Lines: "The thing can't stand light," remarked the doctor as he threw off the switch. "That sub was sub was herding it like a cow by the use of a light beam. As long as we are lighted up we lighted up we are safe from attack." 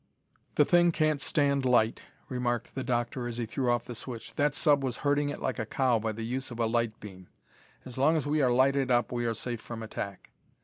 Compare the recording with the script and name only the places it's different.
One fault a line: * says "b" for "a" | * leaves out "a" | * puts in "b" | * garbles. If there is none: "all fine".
* leaves out "sub was"
* leaves out "lighted up we"